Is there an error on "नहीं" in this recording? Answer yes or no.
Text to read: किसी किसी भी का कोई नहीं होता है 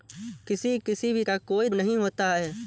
no